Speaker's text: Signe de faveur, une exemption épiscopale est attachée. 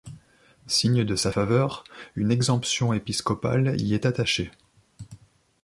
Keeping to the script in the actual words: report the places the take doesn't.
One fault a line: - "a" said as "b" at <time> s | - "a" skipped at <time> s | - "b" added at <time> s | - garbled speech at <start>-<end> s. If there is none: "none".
- "sa" added at 1.1 s
- "y" added at 3.8 s